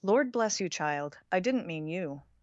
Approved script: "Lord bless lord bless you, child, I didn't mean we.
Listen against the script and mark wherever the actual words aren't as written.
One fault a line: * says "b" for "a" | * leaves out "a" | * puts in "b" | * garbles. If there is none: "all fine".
* leaves out "lord bless"
* says "you" for "we"